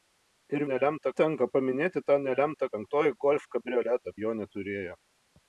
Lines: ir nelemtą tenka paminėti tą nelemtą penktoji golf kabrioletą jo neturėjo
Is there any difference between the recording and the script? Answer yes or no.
no